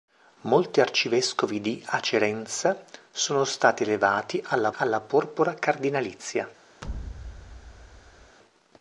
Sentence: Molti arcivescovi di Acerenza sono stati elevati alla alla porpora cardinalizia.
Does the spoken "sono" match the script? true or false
true